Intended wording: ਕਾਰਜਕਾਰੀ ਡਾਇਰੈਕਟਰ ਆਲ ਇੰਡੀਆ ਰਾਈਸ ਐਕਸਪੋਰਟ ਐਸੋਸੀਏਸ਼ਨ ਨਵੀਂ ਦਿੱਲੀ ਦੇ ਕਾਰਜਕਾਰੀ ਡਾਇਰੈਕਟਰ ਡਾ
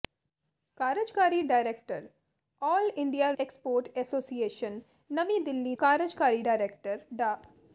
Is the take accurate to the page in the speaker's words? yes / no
no